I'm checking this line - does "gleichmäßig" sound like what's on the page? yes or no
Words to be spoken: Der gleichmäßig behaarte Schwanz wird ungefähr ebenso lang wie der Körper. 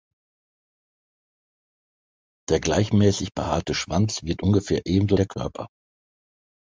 yes